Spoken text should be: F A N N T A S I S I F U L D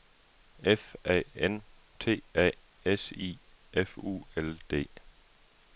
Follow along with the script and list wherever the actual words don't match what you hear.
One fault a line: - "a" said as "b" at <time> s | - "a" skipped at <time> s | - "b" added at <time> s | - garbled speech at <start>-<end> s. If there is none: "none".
- "N" skipped at 1.6 s
- "S I" skipped at 3.4 s